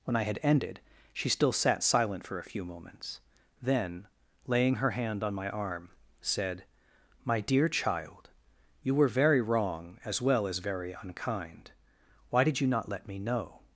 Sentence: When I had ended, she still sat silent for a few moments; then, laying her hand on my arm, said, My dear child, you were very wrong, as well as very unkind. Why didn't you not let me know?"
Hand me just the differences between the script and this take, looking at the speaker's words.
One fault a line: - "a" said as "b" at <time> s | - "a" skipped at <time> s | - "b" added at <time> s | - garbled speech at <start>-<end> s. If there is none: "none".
- "didn't" said as "did" at 12.4 s